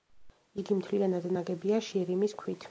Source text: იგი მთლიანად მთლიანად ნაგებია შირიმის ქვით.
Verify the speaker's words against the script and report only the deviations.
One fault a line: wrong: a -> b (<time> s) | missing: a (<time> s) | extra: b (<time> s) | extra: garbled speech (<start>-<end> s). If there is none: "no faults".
missing: მთლიანად (1.3 s)